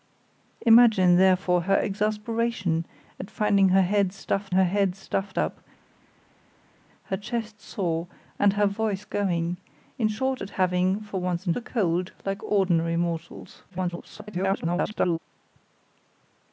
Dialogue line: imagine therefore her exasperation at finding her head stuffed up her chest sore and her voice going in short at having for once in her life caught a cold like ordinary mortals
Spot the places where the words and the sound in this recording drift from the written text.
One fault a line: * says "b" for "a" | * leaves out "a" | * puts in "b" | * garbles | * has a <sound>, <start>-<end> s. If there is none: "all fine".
* puts in "her head stuffed"
* leaves out "her life caught"
* garbles